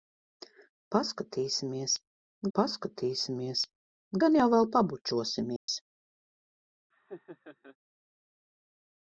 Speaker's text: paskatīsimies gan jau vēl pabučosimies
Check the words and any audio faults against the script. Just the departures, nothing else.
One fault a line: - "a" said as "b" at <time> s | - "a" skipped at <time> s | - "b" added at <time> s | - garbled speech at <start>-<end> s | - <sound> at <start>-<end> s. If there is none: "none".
- "paskatīsimies" added at 2.6 s
- dropout at 5.6-5.7 s
- laugh at 6.9-7.8 s